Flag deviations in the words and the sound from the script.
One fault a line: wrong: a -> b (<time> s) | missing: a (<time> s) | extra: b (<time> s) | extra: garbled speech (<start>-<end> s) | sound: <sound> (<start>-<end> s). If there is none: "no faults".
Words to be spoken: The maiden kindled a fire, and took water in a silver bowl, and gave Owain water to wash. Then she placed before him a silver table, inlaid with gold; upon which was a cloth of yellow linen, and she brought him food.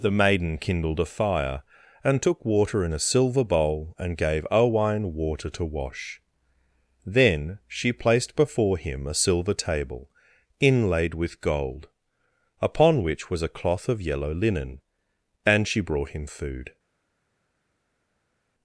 no faults